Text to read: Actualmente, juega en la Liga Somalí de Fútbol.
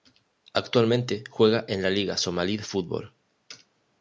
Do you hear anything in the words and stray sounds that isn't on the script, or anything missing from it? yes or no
no